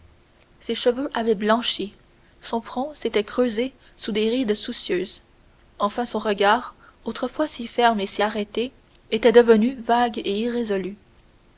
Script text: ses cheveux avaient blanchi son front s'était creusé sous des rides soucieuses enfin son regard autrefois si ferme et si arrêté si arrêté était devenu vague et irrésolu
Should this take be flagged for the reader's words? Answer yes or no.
yes